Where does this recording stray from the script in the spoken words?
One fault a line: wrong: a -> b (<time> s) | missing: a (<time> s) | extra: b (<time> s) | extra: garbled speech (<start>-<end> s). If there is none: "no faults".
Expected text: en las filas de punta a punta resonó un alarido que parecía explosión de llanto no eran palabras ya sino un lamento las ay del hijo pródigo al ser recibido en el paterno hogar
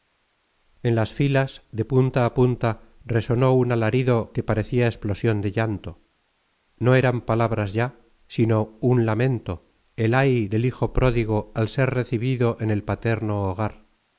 wrong: las -> el (10.0 s)